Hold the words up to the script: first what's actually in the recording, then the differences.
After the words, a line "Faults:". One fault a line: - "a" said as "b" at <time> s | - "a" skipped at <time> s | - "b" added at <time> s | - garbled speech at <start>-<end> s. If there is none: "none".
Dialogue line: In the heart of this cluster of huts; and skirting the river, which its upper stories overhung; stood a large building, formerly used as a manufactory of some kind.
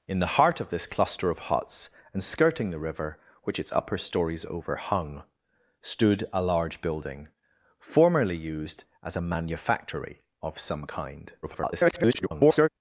In the heart of this cluster of huts; and skirting the river, which its upper stories overhung; stood a large building, formerly used as a manufactory of some kind. [garbled]
Faults:
- garbled speech at 11.4-12.7 s